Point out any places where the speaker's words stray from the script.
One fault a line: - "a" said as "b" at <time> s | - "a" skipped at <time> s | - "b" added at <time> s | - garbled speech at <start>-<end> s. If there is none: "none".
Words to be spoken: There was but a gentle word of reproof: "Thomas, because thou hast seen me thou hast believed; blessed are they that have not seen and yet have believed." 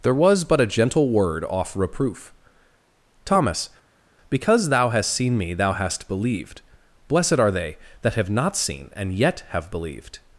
- "of" said as "off" at 1.4 s